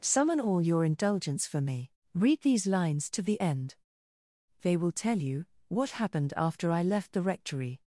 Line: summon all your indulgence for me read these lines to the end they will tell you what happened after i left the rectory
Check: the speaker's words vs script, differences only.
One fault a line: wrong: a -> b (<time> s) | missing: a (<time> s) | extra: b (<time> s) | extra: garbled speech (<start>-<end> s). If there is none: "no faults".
no faults